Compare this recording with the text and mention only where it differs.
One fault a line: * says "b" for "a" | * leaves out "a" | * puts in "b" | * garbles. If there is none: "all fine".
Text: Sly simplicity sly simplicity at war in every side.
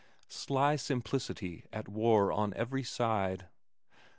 * leaves out "sly simplicity"
* says "on" for "in"